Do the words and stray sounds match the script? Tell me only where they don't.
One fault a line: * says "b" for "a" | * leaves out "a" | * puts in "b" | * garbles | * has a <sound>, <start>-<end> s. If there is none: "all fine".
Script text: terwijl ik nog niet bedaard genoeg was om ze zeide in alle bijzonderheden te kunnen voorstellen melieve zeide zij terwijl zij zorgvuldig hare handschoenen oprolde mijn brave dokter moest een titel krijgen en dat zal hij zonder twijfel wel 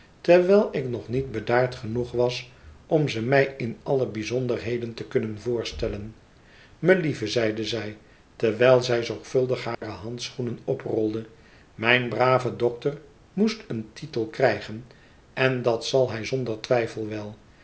* says "mij" for "zeide"
* has a dropout, 9.7-9.8 s